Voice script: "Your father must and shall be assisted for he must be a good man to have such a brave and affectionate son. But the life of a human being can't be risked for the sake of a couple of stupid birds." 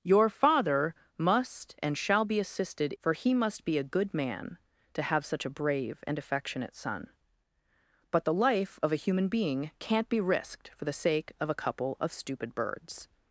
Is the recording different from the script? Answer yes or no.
no